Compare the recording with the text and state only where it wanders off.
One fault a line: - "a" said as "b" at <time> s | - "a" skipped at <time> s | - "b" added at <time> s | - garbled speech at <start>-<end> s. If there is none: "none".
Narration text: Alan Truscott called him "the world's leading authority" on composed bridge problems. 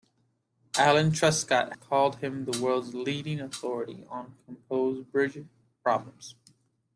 none